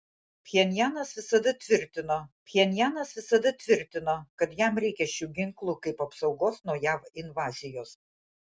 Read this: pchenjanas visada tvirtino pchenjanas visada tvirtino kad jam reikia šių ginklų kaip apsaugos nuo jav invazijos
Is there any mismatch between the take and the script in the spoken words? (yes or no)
no